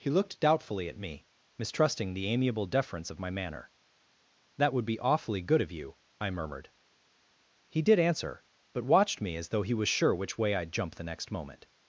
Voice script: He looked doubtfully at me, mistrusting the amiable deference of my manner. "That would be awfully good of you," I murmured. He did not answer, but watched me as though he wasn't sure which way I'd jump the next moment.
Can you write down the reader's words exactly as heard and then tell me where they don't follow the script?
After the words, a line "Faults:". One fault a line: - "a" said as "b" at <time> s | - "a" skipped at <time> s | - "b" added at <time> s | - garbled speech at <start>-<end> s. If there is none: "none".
He looked doubtfully at me, mistrusting the amiable deference of my manner. "That would be awfully good of you," I murmured. He did answer, but watched me as though he was sure which way I'd jump the next moment.
Faults:
- "not" skipped at 8.0 s
- "wasn't" said as "was" at 9.7 s